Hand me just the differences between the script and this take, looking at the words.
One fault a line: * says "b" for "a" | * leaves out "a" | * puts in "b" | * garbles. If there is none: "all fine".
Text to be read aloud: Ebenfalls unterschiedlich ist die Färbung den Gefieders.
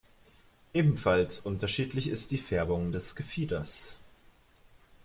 * says "des" for "den"